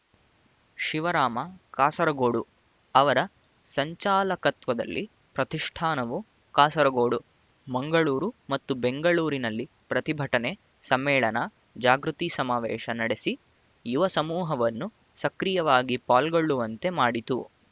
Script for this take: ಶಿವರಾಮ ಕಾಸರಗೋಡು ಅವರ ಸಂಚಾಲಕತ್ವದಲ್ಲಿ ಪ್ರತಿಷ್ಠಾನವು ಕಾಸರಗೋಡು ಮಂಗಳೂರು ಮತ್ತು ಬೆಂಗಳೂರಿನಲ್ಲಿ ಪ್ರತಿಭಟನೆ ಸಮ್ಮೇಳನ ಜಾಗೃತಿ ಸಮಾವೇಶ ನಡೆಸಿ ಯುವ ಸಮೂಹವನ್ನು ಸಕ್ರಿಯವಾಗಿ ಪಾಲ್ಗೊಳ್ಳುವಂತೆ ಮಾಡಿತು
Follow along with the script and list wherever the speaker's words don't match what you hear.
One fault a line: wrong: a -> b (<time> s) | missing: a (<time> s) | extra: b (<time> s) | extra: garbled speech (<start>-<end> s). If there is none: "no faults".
no faults